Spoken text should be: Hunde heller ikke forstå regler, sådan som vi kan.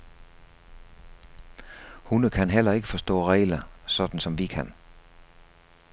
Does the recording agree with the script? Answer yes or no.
no